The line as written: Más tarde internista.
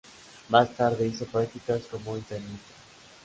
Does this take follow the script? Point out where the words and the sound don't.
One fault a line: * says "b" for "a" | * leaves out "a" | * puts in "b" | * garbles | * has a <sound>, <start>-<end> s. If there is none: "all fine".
* puts in "hizo prácticas como"